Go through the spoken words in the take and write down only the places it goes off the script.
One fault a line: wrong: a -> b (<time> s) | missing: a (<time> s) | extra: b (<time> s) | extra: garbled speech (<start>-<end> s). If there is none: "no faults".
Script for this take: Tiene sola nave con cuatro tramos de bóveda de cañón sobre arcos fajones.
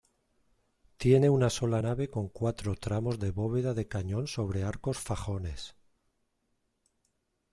extra: una (1.3 s)